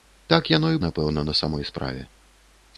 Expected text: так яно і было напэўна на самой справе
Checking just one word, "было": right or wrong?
wrong